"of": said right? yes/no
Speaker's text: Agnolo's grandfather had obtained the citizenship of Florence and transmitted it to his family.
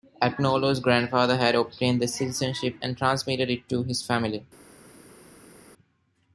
no